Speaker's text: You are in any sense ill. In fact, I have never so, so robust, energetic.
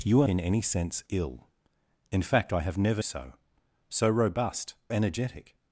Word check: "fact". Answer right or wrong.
right